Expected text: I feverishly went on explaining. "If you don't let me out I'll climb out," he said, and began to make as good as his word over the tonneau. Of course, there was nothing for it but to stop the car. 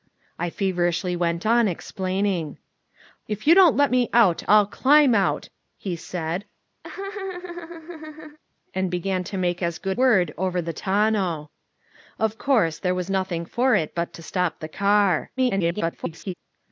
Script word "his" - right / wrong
wrong